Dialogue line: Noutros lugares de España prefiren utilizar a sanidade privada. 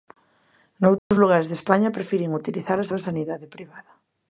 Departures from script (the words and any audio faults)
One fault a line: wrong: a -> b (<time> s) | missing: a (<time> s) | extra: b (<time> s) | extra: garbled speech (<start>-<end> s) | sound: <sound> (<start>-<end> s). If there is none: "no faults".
sound: dropout (1.0-1.1 s)
extra: a (2.9 s)